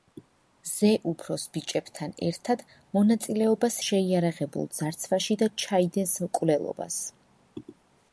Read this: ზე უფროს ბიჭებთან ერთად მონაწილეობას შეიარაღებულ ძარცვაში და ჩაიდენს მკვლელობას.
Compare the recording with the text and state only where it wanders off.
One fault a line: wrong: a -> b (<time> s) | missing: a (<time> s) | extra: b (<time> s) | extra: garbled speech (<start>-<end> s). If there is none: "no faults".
no faults